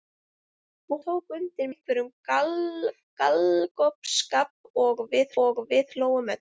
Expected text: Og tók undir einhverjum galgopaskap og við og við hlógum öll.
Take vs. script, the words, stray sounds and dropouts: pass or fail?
pass